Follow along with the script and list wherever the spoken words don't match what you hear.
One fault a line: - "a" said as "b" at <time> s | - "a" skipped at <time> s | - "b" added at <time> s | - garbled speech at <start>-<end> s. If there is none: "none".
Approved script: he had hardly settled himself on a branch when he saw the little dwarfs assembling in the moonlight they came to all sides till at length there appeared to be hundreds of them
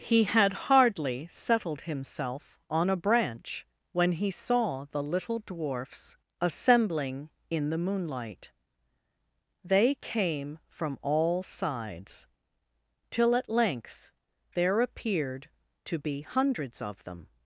- "to" said as "from" at 10.7 s